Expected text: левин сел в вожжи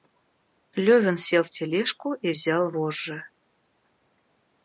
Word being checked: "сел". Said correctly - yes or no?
yes